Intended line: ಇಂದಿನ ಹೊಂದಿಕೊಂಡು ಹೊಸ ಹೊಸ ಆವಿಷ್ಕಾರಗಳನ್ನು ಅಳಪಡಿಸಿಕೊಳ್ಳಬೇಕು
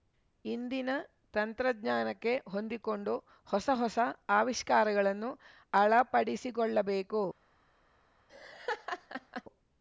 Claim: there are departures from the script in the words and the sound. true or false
true